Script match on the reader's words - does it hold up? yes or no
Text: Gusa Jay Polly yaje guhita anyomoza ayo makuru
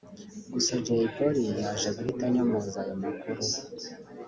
yes